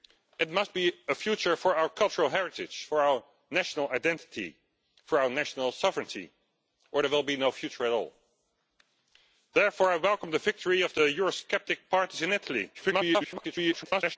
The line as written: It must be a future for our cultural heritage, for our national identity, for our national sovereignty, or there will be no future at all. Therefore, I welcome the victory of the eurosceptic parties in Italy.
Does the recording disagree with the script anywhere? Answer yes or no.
yes